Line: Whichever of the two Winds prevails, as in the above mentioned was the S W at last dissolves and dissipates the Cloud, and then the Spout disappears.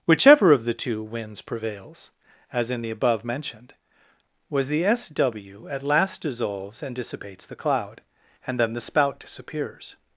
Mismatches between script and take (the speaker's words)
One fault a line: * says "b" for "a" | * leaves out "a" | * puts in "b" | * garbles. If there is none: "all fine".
all fine